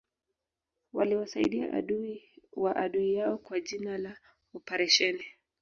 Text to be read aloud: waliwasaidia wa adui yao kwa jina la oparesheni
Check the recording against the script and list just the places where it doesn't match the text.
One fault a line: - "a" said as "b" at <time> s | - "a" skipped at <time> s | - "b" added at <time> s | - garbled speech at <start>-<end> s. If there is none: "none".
- "adui" added at 1.7 s